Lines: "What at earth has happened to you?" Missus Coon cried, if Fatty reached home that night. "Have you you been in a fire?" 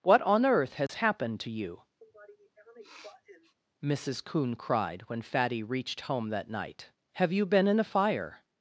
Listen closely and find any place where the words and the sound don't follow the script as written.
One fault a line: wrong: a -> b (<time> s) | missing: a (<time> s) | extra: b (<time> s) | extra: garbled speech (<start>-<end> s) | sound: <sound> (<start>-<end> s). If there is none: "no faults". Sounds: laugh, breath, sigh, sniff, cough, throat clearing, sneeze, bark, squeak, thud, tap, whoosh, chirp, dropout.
wrong: at -> on (0.2 s)
sound: dropout (0.9-0.9 s)
sound: sniff (2.0-3.6 s)
wrong: if -> when (5.0 s)
missing: you (7.5 s)